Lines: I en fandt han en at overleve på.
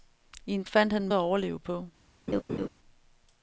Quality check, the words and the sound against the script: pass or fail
fail